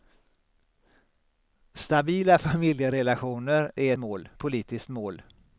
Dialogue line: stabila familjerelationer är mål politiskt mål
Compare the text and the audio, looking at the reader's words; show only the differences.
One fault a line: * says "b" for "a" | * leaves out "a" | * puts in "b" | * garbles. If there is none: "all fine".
all fine